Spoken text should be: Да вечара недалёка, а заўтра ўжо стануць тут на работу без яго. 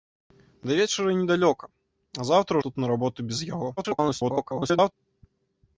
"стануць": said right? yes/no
no